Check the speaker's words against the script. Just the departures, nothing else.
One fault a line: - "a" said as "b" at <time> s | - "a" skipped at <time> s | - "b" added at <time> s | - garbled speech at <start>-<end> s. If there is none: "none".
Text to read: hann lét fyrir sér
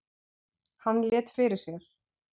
none